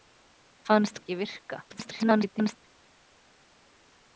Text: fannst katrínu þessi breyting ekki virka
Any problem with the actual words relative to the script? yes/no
yes